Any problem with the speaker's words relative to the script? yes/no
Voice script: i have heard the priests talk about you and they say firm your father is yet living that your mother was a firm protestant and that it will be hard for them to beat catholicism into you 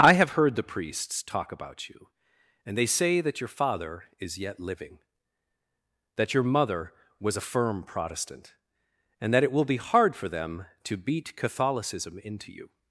yes